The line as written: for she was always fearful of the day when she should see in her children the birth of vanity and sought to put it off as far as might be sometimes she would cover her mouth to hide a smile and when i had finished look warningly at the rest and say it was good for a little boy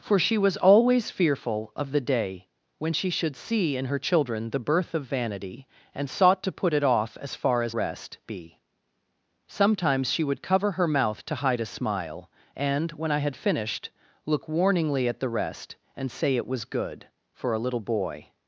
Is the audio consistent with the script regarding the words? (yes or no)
no